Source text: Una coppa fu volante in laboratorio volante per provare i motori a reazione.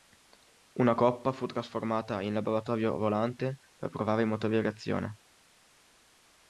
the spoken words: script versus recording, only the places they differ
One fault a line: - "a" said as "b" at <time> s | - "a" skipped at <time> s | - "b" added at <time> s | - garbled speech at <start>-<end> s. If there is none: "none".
- "volante" said as "trasformata" at 1.5 s